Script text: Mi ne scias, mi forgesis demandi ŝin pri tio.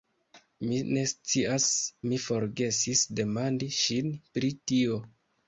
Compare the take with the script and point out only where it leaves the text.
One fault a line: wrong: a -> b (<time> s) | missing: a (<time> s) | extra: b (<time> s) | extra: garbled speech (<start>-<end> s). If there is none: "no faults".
no faults